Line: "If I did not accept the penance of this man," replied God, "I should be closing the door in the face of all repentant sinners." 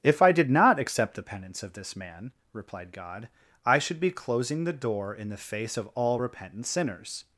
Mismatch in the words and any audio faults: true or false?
false